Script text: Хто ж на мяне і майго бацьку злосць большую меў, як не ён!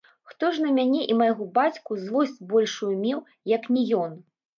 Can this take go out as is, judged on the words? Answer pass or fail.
pass